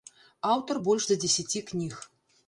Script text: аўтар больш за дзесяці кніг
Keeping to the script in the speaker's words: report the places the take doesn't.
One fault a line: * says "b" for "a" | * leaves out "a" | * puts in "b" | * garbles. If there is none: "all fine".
all fine